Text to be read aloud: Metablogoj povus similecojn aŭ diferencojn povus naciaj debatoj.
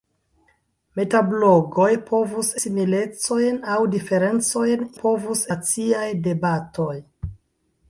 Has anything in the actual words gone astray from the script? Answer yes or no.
no